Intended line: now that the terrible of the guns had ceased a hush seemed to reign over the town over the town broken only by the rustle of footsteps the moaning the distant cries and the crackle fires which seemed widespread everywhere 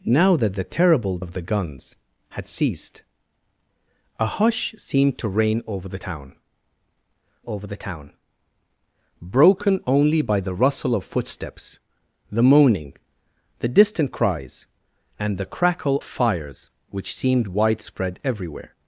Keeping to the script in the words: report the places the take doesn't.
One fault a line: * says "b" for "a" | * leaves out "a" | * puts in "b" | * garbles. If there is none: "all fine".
all fine